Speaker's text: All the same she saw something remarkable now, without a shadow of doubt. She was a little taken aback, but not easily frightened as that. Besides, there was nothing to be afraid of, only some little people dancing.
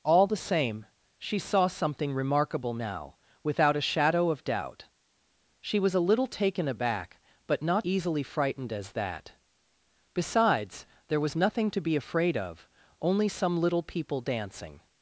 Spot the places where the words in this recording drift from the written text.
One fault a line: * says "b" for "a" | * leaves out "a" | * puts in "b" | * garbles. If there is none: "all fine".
all fine